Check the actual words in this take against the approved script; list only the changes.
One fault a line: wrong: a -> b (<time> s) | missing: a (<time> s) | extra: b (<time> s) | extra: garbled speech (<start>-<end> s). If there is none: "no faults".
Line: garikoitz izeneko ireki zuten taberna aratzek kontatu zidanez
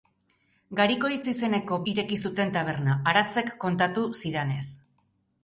no faults